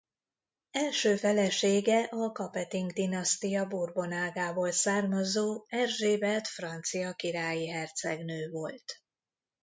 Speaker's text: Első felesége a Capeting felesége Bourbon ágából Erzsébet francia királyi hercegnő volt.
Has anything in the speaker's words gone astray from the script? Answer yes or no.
yes